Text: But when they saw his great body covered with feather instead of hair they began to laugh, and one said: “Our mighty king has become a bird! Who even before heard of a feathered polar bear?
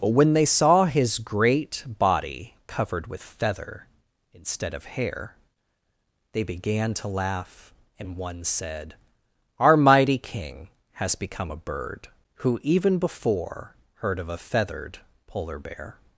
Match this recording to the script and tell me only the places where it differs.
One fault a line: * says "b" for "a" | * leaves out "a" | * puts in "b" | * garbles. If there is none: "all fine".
all fine